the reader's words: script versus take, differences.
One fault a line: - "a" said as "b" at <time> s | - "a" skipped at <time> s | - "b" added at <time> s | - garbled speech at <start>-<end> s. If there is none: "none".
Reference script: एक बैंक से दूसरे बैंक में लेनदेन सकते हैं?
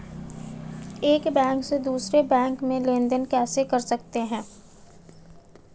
- "कैसे कर" added at 3.3 s